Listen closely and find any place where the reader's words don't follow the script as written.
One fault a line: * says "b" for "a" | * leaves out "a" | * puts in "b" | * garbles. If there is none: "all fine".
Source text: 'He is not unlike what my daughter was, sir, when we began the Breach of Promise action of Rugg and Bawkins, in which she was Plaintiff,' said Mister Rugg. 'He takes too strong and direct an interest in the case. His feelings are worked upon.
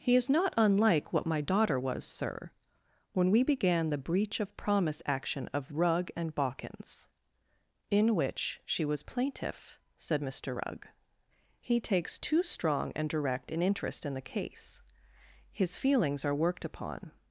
all fine